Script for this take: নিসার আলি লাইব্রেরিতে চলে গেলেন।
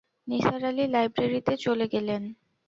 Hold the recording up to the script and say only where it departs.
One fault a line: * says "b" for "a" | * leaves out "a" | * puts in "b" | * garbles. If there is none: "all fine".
all fine